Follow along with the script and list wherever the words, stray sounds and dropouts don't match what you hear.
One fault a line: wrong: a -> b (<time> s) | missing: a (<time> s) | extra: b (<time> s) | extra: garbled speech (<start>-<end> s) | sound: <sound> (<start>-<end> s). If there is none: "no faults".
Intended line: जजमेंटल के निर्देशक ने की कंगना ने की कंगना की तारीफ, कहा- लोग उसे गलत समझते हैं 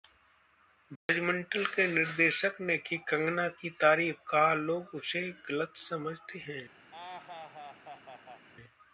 sound: dropout (1.0-1.1 s)
missing: ने की कंगना (3.5 s)
sound: laugh (6.9-8.5 s)